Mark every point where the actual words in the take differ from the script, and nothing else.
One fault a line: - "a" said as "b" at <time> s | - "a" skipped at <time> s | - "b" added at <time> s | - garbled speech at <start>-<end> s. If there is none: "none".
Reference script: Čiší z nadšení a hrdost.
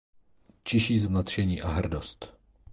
none